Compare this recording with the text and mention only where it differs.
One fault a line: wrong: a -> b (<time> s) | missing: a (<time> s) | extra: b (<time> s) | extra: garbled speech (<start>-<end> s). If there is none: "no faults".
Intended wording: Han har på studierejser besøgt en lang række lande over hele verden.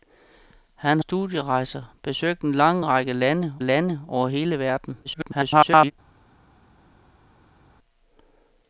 missing: har på (1.0 s)
extra: lande (3.6 s)
extra: garbled speech (5.0-5.9 s)